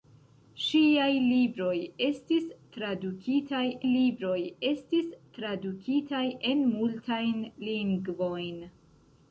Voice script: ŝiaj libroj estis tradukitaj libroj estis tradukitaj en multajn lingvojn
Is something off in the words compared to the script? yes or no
no